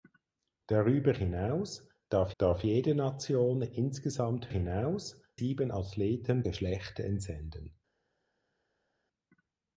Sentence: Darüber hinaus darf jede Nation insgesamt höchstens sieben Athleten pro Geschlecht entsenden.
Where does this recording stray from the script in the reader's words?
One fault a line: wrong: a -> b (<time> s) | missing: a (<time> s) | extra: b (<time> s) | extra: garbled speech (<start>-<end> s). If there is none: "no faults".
extra: darf (2.4 s)
wrong: höchstens -> hinaus (4.5 s)
missing: pro (6.5 s)